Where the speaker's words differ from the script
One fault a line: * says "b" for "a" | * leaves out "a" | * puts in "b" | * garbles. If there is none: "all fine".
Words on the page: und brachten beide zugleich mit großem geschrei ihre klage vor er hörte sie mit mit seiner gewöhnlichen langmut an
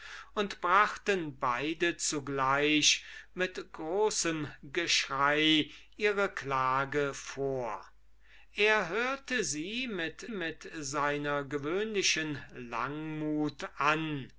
all fine